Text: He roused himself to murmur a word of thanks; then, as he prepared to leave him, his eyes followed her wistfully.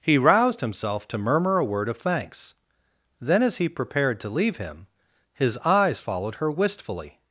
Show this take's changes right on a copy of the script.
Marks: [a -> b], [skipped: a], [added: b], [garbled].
He roused himself to murmur a word of thanks; then, as he prepared to leave him, his eyes followed her wistfully.